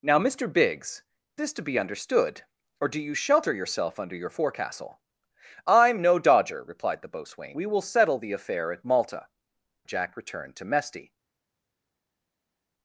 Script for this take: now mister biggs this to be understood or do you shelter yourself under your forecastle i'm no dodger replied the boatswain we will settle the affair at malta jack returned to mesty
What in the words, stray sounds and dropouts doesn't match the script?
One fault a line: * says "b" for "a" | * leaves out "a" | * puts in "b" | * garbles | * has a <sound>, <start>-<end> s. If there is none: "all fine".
all fine